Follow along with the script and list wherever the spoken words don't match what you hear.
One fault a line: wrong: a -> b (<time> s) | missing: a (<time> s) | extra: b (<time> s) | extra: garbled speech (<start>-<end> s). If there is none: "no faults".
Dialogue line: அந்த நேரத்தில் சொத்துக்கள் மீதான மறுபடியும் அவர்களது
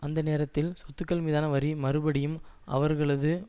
extra: வரி (1.5 s)